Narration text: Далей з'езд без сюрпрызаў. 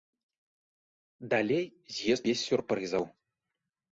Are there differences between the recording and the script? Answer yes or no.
no